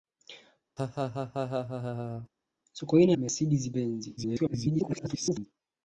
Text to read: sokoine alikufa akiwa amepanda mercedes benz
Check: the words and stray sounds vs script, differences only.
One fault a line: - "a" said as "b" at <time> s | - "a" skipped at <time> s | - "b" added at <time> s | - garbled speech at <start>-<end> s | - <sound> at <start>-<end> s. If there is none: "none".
- laugh at 0.8-2.3 s
- "alikufa akiwa amepanda" skipped at 3.2 s
- garbled speech at 4.2-5.5 s